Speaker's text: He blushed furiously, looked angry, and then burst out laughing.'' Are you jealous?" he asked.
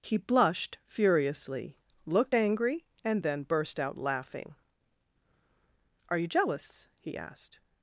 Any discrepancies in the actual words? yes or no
no